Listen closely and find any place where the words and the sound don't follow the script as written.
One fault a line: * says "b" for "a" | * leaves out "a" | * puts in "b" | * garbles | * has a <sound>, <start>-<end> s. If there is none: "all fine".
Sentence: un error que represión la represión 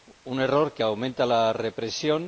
* says "aumenta" for "represión"